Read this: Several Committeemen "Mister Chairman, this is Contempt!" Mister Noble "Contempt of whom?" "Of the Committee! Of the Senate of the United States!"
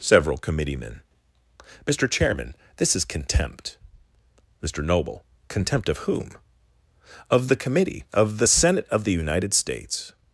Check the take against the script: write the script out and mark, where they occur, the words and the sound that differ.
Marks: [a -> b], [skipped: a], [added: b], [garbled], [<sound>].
Several Committeemen "Mister Chairman, this is Contempt!" Mister Noble "Contempt of whom?" "Of the Committee! Of the Senate of the United States!"